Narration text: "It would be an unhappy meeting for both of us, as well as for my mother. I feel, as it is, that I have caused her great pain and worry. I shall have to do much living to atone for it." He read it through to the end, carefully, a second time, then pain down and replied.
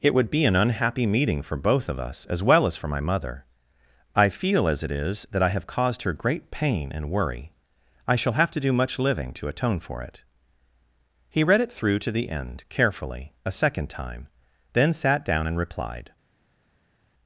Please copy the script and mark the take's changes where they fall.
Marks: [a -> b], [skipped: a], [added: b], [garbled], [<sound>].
"It would be an unhappy meeting for both of us, as well as for my mother. I feel, as it is, that I have caused her great pain and worry. I shall have to do much living to atone for it." He read it through to the end, carefully, a second time, then [pain -> sat] down and replied.